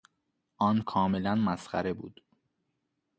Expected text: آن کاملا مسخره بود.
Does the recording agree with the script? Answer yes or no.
yes